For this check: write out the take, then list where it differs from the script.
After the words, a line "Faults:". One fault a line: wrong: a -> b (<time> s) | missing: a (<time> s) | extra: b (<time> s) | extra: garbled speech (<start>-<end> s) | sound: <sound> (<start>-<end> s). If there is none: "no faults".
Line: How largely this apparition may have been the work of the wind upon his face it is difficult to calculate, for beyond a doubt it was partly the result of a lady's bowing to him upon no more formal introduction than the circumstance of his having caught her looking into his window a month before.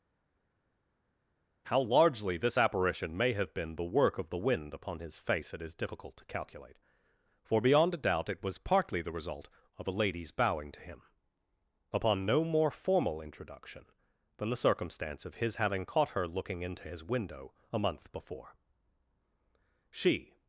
How largely this apparition may have been the work of the wind upon his face it is difficult to calculate, for beyond a doubt it was partly the result of a lady's bowing to him upon no more formal introduction than the circumstance of his having caught her looking into his window a month before. She
Faults:
extra: She (19.9 s)